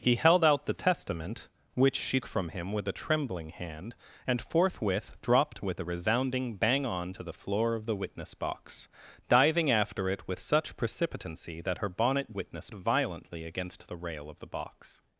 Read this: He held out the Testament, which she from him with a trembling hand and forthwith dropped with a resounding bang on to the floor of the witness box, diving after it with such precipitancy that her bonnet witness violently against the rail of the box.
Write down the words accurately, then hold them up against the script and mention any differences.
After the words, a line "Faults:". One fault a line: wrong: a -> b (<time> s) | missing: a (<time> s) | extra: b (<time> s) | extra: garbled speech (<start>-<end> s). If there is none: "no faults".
He held out the Testament, which she from him with a trembling hand and forthwith dropped with a resounding bang on to the floor of the witness box, diving after it with such precipitancy that her bonnet witness violently against the rail of the box.
Faults:
no faults